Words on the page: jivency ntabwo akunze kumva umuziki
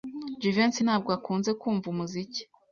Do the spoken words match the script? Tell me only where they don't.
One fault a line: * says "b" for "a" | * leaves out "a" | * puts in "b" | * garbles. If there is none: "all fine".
all fine